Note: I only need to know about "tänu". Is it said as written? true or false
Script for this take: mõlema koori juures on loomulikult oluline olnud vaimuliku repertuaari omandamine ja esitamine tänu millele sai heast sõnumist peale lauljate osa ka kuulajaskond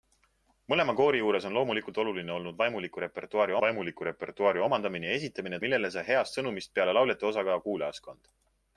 false